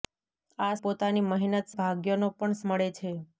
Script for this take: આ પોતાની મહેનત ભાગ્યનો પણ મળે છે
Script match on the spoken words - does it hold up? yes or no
yes